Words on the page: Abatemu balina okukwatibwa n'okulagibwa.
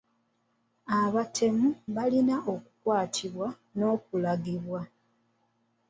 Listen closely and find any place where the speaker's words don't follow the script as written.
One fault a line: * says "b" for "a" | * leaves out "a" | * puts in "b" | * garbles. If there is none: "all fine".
all fine